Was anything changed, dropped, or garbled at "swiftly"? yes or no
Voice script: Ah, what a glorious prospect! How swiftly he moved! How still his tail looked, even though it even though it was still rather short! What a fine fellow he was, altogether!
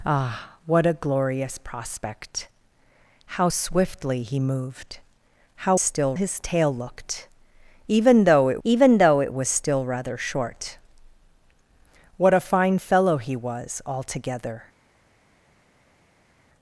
no